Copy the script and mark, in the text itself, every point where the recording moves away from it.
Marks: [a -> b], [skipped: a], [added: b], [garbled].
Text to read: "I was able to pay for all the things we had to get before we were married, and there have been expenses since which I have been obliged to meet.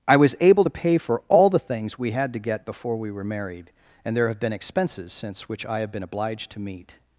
"I was able to pay for all the things we had to get before we were married, and there have been expenses since which I have been obliged to meet.